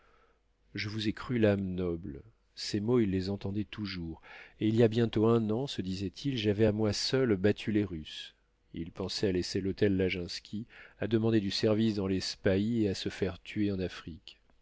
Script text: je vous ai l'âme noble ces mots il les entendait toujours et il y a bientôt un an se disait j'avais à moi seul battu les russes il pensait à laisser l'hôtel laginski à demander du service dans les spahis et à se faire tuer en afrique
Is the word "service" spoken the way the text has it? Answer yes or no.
yes